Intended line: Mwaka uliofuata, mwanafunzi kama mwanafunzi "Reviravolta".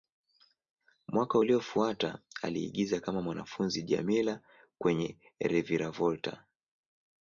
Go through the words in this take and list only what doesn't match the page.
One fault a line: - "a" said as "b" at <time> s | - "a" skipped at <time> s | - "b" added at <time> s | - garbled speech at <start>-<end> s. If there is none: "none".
- "mwanafunzi" said as "aliigiza" at 2.4 s
- "Djamila kwenye" added at 3.8 s